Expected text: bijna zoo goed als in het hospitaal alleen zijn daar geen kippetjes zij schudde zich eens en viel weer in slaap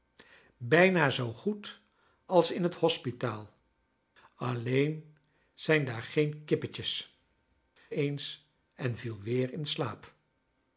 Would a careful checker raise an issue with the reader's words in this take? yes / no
yes